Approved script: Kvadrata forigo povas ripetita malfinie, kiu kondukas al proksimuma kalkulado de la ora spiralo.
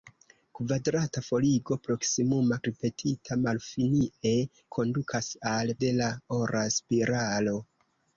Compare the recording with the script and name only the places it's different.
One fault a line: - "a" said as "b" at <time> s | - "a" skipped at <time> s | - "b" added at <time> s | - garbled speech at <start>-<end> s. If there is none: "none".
- "povas" said as "proksimuma" at 1.9 s
- "kiu" skipped at 4.3 s
- "proksimuma kalkulado" skipped at 5.7 s